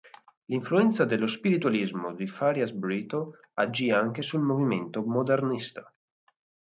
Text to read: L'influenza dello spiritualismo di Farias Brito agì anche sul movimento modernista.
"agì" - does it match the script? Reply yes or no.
yes